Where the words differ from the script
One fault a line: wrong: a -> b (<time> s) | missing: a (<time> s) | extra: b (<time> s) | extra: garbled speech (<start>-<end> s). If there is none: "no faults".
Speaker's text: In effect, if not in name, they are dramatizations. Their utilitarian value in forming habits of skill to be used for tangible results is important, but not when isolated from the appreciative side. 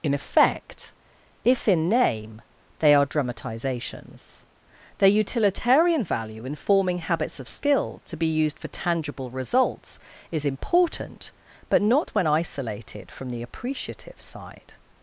missing: not (1.7 s)